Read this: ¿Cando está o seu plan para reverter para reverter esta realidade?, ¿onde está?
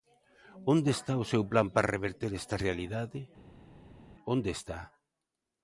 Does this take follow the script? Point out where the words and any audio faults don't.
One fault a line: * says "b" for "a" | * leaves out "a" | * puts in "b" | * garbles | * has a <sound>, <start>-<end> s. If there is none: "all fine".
* says "Onde" for "Cando"
* leaves out "para reverter"